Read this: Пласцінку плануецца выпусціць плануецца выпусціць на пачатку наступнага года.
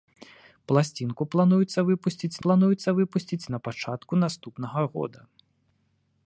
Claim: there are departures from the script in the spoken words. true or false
false